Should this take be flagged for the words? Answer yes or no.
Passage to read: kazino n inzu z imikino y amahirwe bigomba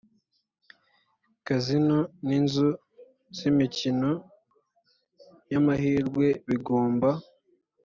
no